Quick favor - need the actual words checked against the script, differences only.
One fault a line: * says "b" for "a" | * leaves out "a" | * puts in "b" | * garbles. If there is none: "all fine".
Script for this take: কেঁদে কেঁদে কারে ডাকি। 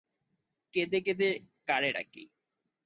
all fine